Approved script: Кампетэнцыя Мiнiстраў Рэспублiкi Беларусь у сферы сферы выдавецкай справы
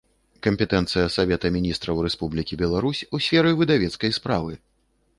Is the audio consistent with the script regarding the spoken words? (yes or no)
no